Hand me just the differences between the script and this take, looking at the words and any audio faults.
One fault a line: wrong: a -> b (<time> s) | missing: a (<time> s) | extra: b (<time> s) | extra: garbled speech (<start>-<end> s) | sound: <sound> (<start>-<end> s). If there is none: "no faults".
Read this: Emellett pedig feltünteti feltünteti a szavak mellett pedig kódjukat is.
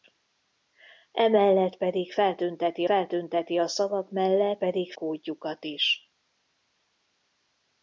no faults